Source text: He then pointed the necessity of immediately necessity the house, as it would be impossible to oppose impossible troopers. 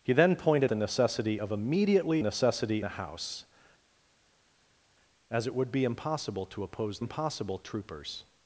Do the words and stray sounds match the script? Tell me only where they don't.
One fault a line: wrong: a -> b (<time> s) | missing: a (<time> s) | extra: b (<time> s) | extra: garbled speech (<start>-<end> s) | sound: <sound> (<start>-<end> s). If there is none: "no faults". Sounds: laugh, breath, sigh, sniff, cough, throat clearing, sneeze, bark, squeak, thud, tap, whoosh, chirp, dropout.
no faults